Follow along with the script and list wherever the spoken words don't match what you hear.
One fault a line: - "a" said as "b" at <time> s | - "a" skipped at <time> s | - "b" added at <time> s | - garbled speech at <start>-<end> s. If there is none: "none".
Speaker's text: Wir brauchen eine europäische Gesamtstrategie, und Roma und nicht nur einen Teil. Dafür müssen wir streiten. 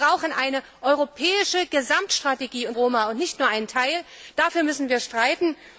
none